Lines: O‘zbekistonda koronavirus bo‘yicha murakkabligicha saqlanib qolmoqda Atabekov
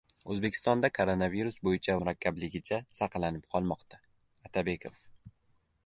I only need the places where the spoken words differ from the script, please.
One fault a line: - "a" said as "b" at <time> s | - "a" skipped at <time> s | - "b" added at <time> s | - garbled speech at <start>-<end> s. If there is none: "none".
none